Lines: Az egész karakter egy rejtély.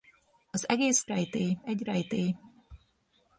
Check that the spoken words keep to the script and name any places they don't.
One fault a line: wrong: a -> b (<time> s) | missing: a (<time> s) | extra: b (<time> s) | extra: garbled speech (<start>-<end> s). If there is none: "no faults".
wrong: karakter -> rejtély (1.0 s)